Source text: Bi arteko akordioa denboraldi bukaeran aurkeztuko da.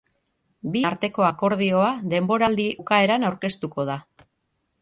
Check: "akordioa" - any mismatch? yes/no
no